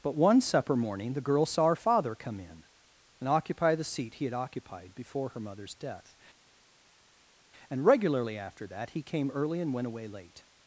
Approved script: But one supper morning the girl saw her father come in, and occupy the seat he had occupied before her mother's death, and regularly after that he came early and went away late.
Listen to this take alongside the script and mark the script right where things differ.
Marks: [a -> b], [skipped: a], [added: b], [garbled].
But one supper morning the girl saw her father come in, and occupy the seat he had occupied before her mother's death, and regularly after that he came early and went away late.